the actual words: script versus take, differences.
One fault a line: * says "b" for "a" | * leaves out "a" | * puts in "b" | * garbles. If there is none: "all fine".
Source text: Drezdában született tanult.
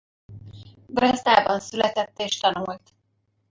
* puts in "és"